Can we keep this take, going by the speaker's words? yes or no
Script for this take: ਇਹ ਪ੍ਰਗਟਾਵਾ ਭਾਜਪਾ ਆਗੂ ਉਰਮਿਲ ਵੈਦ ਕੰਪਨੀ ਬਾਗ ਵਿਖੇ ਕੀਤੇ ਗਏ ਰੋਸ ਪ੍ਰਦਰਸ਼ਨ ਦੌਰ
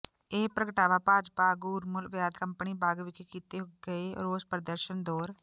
yes